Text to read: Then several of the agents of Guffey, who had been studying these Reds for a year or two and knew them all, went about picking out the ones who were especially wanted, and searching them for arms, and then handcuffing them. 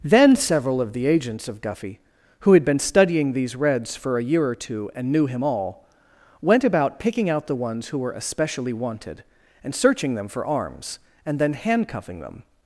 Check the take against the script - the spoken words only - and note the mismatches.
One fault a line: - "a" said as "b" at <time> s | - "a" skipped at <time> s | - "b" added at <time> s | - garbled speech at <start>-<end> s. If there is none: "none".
- "them" said as "him" at 5.3 s